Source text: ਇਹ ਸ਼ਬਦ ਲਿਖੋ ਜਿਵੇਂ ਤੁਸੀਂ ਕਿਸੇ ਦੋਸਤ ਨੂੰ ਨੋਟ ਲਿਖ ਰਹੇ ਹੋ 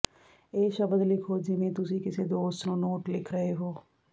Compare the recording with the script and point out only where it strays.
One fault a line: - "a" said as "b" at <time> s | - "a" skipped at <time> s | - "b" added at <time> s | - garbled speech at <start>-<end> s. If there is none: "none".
none